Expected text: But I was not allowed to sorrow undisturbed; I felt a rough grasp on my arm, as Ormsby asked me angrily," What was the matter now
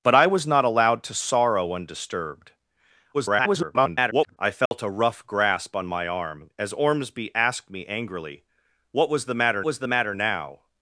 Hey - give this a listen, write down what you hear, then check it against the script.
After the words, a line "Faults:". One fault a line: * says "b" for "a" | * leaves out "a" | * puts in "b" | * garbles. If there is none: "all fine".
But I was not allowed to sorrow undisturbed; [garbled] I felt a rough grasp on my arm, as Ormsby asked me angrily," What was the matter was the matter now
Faults:
* garbles
* puts in "was the matter"